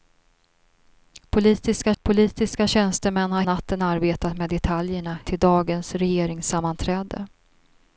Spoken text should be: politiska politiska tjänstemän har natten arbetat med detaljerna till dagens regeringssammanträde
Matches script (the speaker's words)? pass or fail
pass